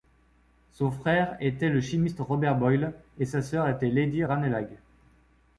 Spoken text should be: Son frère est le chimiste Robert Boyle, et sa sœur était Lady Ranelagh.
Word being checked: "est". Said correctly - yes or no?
no